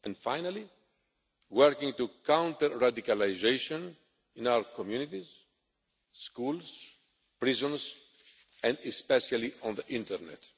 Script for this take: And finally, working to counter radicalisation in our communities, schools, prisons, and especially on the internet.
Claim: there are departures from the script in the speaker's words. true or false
false